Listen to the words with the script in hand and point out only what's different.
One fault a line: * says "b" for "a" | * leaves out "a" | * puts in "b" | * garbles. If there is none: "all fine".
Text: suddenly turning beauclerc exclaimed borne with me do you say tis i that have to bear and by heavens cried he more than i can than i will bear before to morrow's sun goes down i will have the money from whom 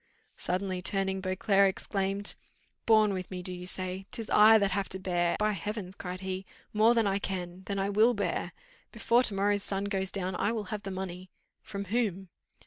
* leaves out "and"